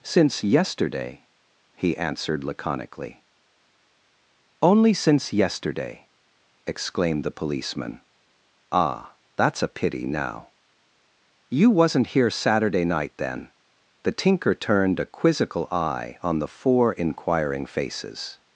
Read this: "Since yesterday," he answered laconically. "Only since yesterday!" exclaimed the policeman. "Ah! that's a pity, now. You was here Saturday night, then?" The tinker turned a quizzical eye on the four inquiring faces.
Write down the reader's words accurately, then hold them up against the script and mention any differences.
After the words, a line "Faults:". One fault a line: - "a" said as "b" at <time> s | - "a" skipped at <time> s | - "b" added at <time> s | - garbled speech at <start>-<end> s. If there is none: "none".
"Since yesterday," he answered laconically. "Only since yesterday!" exclaimed the policeman. "Ah! that's a pity, now. You wasn't here Saturday night, then?" The tinker turned a quizzical eye on the four inquiring faces.
Faults:
- "was" said as "wasn't" at 11.7 s